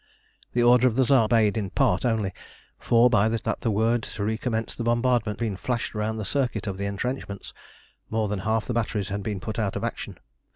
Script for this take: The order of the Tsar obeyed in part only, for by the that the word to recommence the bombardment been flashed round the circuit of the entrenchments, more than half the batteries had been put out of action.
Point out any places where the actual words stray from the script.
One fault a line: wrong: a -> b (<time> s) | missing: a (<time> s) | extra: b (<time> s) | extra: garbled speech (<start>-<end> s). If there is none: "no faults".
no faults